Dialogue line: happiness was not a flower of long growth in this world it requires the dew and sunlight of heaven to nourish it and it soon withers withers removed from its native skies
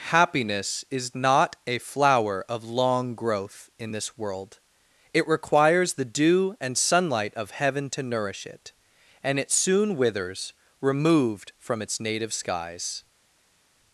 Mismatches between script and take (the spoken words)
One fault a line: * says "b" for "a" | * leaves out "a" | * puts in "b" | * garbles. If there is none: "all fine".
* says "is" for "was"
* leaves out "withers"